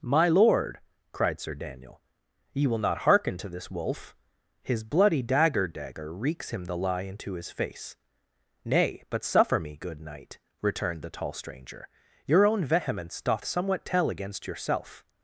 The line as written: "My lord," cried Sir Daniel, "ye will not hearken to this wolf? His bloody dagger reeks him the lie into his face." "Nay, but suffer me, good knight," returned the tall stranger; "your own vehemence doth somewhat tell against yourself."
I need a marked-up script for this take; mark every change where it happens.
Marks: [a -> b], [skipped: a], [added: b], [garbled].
"My lord," cried Sir Daniel, "ye will not hearken to this wolf? His bloody dagger [added: dagger] reeks him the lie into his face." "Nay, but suffer me, good knight," returned the tall stranger; "your own vehemence doth somewhat tell against yourself."